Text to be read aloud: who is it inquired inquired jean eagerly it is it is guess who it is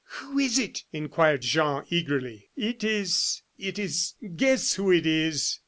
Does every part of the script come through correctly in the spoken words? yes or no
no